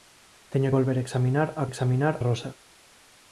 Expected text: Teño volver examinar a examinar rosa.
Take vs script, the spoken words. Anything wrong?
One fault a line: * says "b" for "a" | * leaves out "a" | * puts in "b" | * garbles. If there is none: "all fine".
all fine